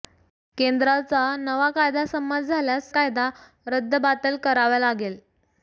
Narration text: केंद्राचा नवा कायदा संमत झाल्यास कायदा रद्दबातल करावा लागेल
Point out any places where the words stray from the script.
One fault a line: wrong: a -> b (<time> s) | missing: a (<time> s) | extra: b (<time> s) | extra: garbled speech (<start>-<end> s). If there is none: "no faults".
no faults